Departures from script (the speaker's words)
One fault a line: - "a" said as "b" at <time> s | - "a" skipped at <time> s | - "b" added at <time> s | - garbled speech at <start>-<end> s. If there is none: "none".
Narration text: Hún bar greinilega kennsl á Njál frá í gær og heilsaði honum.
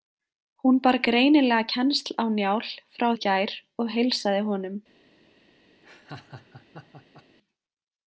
none